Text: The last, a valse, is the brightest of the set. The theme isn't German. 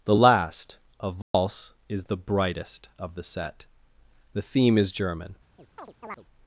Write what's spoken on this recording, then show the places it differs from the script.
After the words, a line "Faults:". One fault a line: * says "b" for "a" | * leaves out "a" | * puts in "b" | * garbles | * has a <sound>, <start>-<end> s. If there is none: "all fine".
The last, a valse, is the brightest of the set. The theme is German.
Faults:
* has a dropout, 1.2-1.3 s
* says "is" for "isn't"
* has a chirp, 5.6-6.3 s